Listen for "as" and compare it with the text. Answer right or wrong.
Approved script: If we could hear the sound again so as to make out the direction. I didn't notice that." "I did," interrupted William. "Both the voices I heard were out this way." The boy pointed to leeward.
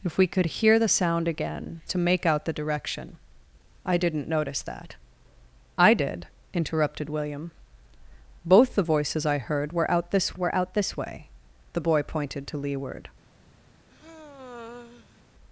wrong